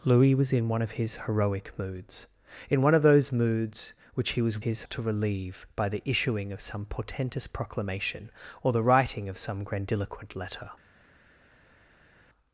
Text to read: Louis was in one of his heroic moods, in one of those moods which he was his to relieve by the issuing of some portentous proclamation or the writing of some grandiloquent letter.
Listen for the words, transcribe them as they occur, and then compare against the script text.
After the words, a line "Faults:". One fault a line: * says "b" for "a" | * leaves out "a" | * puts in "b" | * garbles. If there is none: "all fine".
Louis was in one of his heroic moods, in one of those moods which he was his to relieve by the issuing of some portentous proclamation or the writing of some grandiloquent letter.
Faults:
all fine